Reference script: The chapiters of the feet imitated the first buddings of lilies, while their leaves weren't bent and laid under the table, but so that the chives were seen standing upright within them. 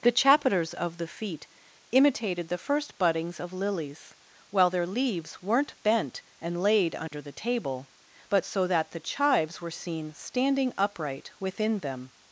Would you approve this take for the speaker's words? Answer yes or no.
yes